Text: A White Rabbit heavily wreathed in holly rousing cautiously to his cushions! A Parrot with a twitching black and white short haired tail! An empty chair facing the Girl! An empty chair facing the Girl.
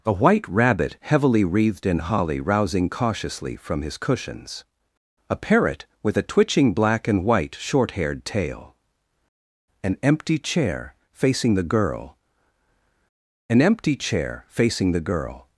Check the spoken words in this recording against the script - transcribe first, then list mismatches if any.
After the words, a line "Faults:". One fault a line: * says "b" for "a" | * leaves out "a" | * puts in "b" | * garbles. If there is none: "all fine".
A White Rabbit heavily wreathed in holly rousing cautiously from his cushions! A Parrot with a twitching black and white short haired tail! An empty chair facing the Girl! An empty chair facing the Girl.
Faults:
* says "from" for "to"